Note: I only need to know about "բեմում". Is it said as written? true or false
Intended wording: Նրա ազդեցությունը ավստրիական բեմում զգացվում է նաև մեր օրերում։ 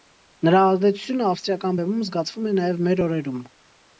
true